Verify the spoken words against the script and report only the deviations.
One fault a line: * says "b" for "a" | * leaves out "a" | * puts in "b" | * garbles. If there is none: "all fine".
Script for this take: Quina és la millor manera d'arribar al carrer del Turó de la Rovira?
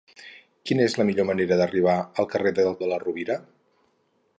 * leaves out "Turó"